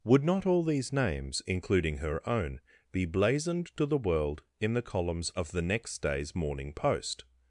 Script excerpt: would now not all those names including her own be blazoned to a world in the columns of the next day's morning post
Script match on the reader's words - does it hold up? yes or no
no